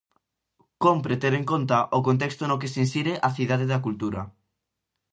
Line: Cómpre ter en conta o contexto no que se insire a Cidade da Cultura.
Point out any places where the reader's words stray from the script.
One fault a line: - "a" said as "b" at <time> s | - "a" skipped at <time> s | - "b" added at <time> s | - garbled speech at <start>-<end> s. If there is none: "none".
none